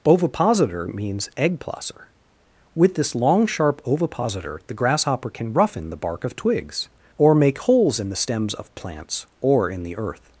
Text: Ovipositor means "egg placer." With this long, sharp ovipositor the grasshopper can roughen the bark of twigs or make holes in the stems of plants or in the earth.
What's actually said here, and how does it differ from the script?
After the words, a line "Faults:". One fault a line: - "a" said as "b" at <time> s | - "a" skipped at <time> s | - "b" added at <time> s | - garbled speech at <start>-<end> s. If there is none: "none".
Ovipositor means "egg placer." With this long, sharp ovipositor the grasshopper can roughen the bark of twigs or make holes in the stems of plants or in the earth.
Faults:
none